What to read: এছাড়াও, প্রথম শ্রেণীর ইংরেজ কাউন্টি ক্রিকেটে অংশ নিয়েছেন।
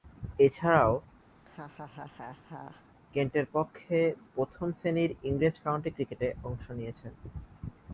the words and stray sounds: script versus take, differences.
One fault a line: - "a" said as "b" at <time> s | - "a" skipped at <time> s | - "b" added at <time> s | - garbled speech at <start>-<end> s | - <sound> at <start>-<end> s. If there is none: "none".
- laugh at 1.4-2.9 s
- "কেন্টের পক্ষে" added at 3.1 s